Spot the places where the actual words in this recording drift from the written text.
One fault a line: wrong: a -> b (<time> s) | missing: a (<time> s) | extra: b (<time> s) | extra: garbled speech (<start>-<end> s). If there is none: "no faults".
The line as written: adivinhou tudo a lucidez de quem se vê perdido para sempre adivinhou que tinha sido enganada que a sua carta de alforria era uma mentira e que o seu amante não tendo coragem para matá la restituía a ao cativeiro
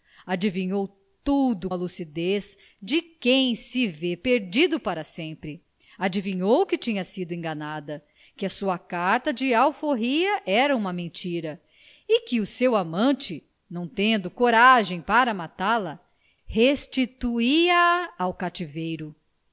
no faults